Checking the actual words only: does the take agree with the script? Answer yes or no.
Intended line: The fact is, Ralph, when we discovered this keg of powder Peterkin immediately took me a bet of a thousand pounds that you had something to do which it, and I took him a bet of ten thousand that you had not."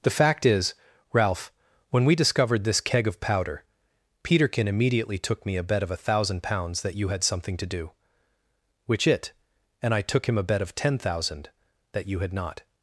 yes